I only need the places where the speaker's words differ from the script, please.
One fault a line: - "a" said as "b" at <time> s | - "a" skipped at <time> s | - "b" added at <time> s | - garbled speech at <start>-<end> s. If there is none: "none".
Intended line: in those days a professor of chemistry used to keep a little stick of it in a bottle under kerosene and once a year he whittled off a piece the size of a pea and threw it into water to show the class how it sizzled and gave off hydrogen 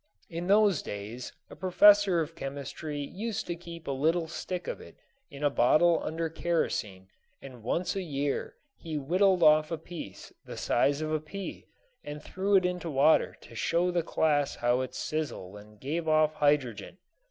none